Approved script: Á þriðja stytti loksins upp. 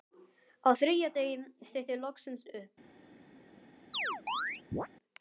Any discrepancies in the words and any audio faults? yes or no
yes